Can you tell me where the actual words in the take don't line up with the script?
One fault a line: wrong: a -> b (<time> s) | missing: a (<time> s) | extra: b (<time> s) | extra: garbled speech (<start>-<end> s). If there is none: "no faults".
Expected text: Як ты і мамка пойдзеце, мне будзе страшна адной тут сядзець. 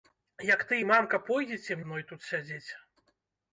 missing: мне будзе страшна (1.8 s)